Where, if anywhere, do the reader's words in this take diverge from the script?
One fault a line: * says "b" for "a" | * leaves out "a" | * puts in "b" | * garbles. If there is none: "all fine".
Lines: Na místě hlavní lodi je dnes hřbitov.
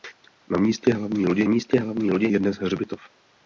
* puts in "místě hlavní lodi"